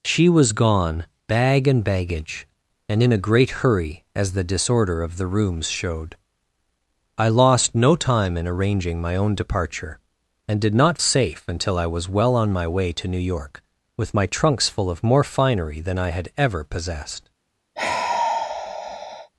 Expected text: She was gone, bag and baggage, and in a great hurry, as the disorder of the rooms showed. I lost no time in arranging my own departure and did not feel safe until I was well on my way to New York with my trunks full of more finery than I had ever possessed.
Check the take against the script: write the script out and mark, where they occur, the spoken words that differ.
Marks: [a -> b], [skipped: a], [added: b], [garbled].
She was gone, bag and baggage, and in a great hurry, as the disorder of the rooms showed. I lost no time in arranging my own departure and did not [skipped: feel] safe until I was well on my way to New York with my trunks full of more finery than I had ever possessed.